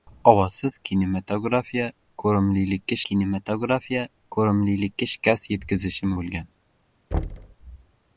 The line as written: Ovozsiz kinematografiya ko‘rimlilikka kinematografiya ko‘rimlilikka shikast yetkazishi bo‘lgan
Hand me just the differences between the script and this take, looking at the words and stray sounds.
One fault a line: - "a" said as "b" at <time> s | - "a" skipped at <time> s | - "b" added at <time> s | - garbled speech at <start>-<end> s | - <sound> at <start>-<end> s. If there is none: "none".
- thud at 7.1-7.6 s